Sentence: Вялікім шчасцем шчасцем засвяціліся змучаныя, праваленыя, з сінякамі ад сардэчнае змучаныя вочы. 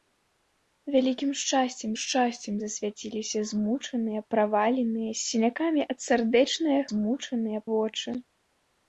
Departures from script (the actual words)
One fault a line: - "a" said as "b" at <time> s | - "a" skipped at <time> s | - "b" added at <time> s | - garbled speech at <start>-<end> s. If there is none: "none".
none